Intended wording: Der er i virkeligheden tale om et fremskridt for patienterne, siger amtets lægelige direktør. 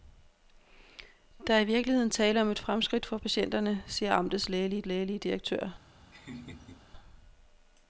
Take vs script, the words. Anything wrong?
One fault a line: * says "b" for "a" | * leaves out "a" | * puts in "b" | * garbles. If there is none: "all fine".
* puts in "lægelige"